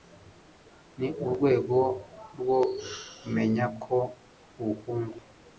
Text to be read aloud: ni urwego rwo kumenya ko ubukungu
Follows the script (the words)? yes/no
yes